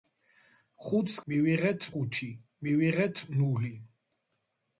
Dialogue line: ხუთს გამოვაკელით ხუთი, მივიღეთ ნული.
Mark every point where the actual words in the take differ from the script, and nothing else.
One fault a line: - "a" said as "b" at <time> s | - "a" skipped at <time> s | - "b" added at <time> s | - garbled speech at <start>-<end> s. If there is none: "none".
- "გამოვაკელით" said as "მივიღეთ" at 1.3 s